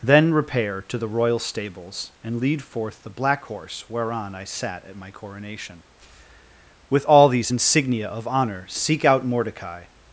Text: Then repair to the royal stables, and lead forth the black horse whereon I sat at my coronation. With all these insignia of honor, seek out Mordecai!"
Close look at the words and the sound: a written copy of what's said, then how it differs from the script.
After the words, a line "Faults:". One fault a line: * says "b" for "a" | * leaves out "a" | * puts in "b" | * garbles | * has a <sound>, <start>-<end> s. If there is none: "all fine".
Then repair to the royal stables, and lead forth the black horse whereon I sat at my coronation. With all these insignia of honor, seek out Mordecai!"
Faults:
all fine